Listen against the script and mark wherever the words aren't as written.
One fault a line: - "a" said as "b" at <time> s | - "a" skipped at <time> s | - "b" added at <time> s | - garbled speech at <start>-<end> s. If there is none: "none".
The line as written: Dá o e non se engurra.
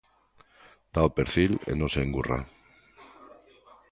- "perfil" added at 1.2 s